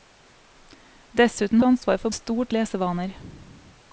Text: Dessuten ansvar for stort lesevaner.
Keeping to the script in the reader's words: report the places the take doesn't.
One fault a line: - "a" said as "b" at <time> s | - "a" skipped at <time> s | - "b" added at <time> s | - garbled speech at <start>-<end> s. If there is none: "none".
none